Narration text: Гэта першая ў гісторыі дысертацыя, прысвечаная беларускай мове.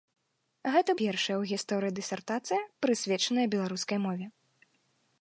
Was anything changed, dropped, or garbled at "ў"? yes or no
no